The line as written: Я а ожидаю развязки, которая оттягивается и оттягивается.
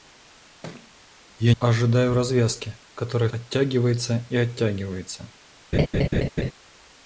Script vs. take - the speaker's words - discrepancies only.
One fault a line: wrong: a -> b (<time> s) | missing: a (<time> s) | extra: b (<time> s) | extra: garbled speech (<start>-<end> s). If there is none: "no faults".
no faults